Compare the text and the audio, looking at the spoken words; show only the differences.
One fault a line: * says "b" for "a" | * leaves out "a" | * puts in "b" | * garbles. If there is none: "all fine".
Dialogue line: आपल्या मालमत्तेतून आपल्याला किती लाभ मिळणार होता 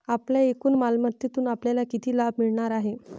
* puts in "एकूण"
* says "आहे" for "होता"